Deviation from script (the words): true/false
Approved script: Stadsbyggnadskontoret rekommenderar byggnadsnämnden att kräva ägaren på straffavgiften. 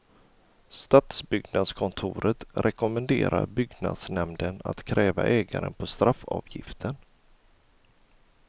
false